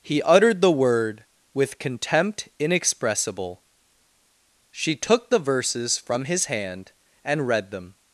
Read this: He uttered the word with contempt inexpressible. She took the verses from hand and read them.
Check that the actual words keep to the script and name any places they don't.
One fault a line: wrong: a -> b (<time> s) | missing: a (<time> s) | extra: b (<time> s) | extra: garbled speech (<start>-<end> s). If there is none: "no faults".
extra: his (6.2 s)